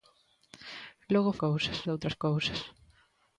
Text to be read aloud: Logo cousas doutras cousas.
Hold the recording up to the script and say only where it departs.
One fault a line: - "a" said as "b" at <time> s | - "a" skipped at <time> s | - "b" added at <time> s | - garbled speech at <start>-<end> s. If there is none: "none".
none